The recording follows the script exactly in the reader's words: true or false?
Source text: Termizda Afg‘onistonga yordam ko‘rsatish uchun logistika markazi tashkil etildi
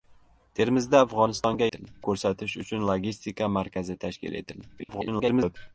false